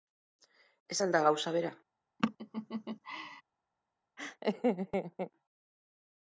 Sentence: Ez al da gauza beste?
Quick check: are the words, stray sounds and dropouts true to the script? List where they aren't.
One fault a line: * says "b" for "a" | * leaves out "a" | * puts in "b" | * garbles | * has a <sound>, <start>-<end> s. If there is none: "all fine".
* says "bera" for "beste"
* has a laugh, 2.2-3.4 s
* has a laugh, 4.2-5.3 s